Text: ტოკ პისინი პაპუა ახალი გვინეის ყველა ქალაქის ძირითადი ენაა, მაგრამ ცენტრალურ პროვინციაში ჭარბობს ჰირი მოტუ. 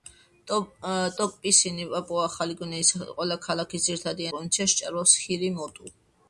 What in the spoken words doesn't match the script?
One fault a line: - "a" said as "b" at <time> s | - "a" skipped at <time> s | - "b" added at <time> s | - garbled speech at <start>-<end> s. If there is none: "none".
- "ენაა მაგრამ ცენტრალურ" skipped at 4.3 s